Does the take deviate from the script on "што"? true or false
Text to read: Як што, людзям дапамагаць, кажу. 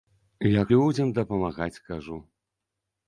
true